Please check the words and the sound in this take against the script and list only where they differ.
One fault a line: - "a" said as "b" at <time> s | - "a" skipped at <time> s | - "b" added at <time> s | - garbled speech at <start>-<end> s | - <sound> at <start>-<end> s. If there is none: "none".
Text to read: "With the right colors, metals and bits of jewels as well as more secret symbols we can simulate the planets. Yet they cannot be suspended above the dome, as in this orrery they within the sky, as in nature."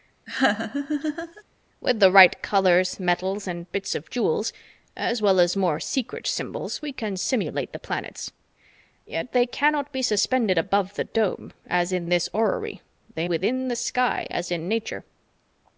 - laugh at 0.3-1.4 s